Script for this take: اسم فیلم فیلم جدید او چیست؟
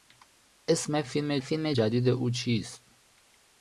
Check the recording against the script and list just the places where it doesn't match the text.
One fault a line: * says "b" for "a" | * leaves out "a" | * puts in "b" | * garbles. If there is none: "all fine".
all fine